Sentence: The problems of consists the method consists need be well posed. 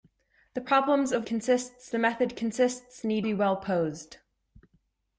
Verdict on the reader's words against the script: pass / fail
pass